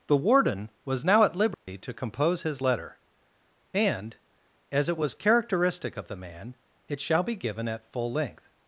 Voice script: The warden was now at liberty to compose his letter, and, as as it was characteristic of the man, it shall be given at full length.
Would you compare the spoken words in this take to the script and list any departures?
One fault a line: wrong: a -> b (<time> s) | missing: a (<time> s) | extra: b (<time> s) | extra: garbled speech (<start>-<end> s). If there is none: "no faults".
missing: as (4.9 s)